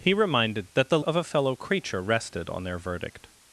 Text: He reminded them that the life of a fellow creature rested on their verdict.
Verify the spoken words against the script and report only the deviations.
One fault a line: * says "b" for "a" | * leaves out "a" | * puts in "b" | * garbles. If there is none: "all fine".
* leaves out "them"
* leaves out "life"